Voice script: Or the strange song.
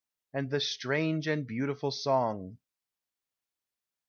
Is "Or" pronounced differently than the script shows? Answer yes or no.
yes